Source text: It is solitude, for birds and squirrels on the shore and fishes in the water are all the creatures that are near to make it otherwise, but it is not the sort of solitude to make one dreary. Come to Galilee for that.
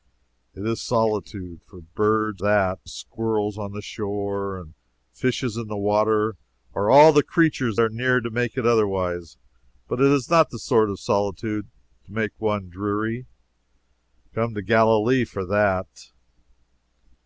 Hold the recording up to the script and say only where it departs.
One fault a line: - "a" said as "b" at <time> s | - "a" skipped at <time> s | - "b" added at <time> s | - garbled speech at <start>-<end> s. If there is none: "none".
- "and" said as "that" at 2.4 s
- "that" skipped at 7.8 s